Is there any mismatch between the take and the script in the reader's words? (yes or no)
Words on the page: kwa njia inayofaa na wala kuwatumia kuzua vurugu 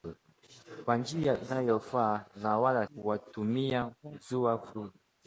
no